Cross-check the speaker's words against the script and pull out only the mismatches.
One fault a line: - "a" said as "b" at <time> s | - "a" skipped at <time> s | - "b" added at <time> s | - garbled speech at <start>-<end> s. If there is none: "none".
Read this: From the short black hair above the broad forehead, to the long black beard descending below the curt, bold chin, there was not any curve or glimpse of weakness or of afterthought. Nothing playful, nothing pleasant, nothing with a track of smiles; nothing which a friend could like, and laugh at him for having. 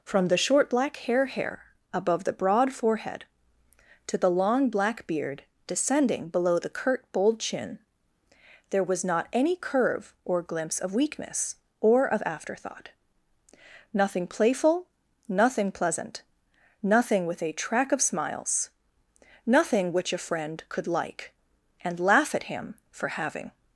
- "hair" added at 1.2 s